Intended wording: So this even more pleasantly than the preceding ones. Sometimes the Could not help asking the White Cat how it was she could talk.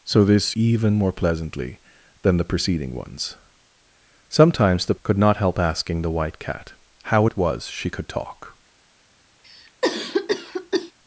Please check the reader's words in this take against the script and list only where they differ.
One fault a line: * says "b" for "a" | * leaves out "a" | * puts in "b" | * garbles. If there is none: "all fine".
all fine